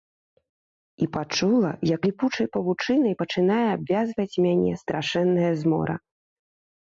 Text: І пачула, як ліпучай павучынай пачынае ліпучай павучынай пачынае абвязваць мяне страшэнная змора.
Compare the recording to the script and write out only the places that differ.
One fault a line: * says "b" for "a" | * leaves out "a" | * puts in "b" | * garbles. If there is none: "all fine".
* leaves out "ліпучай павучынай пачынае"